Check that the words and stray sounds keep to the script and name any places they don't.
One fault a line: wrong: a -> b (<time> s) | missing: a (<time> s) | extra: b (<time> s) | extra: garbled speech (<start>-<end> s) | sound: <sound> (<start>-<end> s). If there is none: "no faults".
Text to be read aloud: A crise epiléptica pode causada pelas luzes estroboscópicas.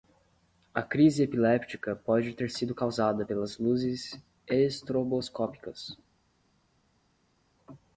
extra: ter sido (2.3 s)